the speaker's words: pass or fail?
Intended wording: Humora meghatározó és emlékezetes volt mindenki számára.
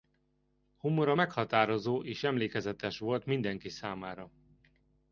pass